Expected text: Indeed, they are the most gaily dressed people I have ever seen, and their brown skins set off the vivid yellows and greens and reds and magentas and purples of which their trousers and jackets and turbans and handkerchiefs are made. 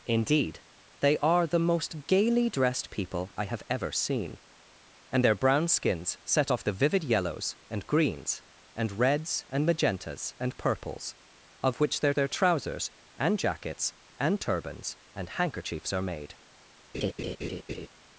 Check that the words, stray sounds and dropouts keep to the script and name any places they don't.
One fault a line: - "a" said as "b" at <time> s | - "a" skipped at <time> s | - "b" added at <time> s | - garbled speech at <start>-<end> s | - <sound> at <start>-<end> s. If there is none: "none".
- "their" added at 12.1 s
- laugh at 16.9-17.9 s